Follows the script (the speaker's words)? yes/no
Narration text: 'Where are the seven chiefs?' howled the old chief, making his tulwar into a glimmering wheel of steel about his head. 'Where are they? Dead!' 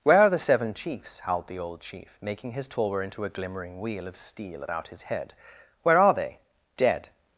yes